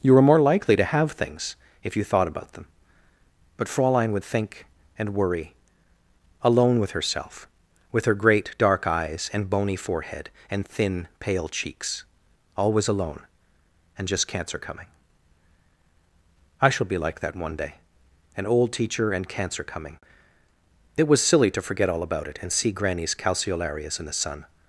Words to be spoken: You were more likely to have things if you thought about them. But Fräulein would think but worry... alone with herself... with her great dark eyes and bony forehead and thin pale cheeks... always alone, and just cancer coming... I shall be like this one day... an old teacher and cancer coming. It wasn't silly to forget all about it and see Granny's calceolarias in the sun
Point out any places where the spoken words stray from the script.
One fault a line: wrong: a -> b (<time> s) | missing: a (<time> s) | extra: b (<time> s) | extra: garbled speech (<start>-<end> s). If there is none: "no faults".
wrong: but -> and (5.0 s)
wrong: this -> that (17.2 s)
wrong: wasn't -> was (21.1 s)